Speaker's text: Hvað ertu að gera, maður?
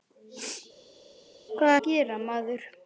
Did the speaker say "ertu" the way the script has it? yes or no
no